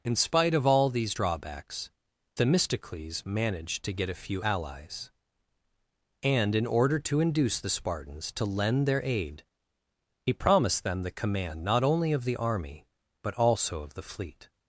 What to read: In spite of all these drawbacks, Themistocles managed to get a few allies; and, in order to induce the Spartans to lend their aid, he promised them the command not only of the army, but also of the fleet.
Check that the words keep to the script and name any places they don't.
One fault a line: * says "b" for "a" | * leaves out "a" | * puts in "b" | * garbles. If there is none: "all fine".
all fine